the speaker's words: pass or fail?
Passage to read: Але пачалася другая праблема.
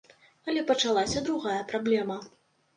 pass